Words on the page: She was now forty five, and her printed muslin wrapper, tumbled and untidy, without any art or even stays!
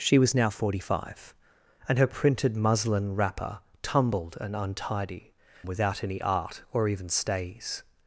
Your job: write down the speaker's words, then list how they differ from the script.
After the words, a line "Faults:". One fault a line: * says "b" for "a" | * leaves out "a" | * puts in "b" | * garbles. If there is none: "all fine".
She was now forty five, and her printed muslin wrapper, tumbled and untidy, without any art or even stays!
Faults:
all fine